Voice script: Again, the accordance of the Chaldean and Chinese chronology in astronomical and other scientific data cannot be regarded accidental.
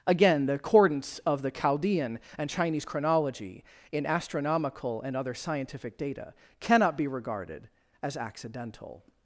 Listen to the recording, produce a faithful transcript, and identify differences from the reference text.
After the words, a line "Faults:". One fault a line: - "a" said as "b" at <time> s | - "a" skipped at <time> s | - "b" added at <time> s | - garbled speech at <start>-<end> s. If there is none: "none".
Again, the accordance of the Chaldean and Chinese chronology in astronomical and other scientific data cannot be regarded as accidental.
Faults:
- "as" added at 8.0 s